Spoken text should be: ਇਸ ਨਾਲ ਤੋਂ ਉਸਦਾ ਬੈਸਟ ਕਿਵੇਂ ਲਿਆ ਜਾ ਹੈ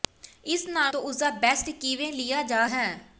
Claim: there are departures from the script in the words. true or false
false